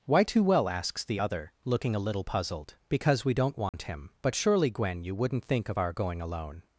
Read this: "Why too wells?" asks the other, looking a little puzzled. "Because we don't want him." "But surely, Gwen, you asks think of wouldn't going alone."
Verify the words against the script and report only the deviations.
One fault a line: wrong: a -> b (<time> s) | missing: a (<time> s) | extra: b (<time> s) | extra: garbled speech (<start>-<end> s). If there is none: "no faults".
wrong: wells -> well (0.4 s)
wrong: asks -> wouldn't (5.1 s)
wrong: wouldn't -> our (5.8 s)